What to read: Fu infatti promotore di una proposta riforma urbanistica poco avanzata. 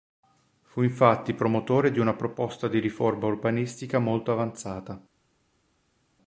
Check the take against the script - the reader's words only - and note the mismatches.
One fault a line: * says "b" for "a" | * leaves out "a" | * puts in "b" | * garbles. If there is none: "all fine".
* puts in "di"
* says "molto" for "poco"